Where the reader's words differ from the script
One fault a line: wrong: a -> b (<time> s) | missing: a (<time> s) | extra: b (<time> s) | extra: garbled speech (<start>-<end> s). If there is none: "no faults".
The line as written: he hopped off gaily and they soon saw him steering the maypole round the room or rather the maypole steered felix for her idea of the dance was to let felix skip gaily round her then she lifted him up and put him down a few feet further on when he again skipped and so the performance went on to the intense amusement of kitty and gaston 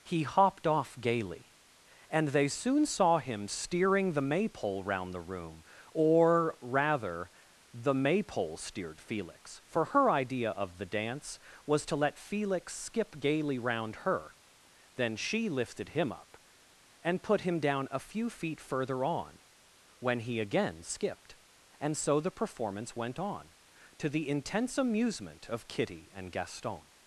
no faults